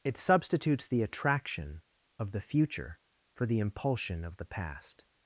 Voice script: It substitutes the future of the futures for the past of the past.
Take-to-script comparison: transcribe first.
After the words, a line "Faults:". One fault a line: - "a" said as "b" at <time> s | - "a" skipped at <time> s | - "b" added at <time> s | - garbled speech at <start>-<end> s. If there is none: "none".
It substitutes the attraction of the future for the impulsion of the past.
Faults:
- "future" said as "attraction" at 1.0 s
- "futures" said as "future" at 2.4 s
- "past" said as "impulsion" at 3.6 s